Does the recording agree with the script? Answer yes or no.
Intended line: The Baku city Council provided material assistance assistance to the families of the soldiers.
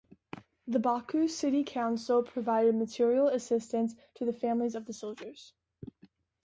no